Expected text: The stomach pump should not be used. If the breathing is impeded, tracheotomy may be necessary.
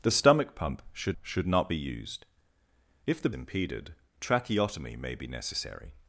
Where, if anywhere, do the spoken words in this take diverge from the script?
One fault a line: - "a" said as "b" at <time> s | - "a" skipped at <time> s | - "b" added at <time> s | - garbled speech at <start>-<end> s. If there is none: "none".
- "should" added at 1.2 s
- "breathing is" skipped at 3.3 s